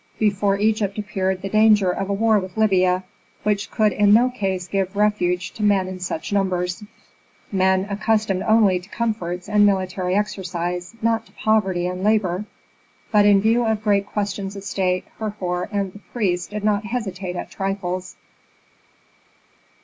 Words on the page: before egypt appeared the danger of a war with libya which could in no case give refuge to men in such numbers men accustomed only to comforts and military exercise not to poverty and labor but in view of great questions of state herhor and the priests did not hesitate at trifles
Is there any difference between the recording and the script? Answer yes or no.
no